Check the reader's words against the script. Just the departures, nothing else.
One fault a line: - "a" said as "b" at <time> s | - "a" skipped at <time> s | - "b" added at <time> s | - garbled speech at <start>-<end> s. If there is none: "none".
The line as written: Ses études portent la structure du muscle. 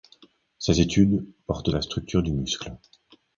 none